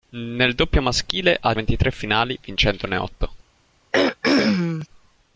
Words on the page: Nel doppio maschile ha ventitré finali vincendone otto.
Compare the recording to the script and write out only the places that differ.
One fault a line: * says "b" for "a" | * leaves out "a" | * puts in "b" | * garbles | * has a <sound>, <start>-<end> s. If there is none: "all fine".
* has a throat clearing, 3.9-4.9 s